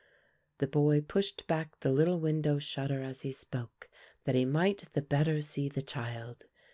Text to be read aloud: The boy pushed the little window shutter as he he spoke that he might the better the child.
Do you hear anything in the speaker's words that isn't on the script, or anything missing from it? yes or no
yes